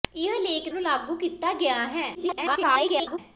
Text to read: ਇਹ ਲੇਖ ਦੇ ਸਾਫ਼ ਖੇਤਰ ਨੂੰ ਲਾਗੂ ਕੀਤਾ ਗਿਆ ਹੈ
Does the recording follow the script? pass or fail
fail